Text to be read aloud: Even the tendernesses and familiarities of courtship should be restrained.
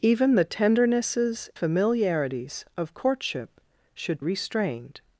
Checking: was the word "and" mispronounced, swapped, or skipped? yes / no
yes